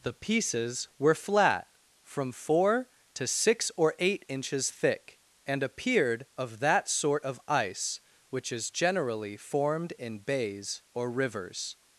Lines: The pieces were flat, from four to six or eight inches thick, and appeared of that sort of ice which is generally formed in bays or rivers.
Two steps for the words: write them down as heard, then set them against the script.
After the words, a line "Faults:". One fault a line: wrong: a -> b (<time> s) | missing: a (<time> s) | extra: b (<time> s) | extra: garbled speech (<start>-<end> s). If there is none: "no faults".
The pieces were flat, from four to six or eight inches thick, and appeared of that sort of ice which is generally formed in bays or rivers.
Faults:
no faults